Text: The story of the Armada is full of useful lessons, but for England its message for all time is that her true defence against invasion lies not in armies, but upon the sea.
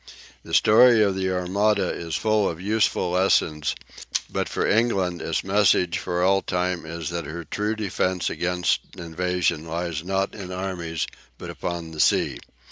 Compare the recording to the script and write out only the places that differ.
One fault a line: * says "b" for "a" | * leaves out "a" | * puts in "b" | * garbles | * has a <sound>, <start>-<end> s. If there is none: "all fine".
all fine